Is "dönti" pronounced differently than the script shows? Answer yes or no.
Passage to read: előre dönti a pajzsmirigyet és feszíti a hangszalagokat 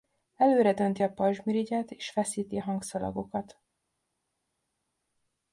no